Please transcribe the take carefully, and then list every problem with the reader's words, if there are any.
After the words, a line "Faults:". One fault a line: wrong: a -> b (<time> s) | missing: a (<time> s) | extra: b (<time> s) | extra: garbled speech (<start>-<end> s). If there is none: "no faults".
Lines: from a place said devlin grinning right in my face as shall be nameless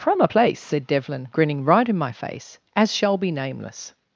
from a place said devlin grinning right in my face as shall be nameless
Faults:
no faults